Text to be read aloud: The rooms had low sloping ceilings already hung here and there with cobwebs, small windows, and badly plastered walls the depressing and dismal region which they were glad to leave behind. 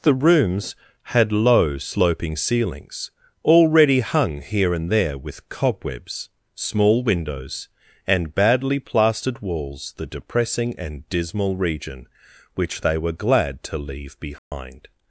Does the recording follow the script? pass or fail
pass